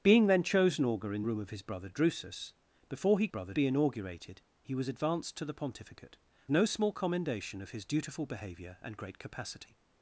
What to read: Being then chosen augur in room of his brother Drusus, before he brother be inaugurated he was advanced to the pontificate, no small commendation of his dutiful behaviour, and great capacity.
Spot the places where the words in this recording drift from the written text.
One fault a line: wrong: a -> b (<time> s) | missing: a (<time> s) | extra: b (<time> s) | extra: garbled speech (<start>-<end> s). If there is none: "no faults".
no faults